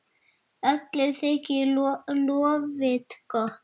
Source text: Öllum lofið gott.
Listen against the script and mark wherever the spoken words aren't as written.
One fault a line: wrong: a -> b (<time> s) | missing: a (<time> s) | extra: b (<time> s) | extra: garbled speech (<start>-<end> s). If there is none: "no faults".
extra: þykir (1.2 s)